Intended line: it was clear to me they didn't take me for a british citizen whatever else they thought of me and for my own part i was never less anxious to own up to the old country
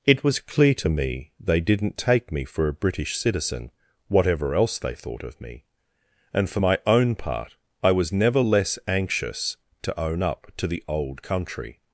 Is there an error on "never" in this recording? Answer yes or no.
no